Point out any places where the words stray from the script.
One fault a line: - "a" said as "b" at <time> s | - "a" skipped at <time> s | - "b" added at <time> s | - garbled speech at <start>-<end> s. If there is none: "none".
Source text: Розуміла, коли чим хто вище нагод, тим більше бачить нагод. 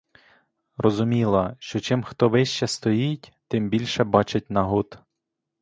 - "коли" said as "що" at 1.6 s
- "нагод" said as "стоїть" at 2.7 s